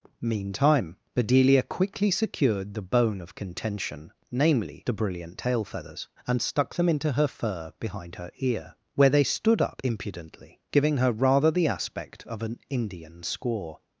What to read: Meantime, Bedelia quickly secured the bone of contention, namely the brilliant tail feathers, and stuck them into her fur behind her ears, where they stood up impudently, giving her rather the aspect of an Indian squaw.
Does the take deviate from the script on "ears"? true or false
true